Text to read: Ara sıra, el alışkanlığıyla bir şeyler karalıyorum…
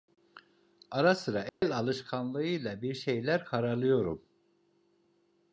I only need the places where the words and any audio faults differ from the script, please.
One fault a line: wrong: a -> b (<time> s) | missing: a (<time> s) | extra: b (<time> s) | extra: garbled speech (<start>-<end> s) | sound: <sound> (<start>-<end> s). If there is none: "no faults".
sound: dropout (1.5-1.6 s)